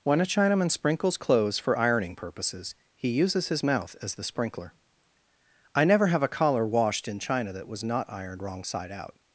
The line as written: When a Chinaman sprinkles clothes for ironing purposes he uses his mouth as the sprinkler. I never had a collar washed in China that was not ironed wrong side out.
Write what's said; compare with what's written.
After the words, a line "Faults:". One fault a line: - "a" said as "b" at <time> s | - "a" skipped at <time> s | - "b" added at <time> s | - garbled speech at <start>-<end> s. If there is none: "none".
When a Chinaman sprinkles clothes for ironing purposes he uses his mouth as the sprinkler. I never have a collar washed in China that was not ironed wrong side out.
Faults:
- "had" said as "have" at 6.1 s